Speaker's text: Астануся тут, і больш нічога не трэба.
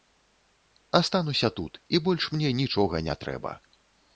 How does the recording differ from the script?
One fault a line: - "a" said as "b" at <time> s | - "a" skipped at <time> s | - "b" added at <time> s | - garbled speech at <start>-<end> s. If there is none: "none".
- "мне" added at 2.4 s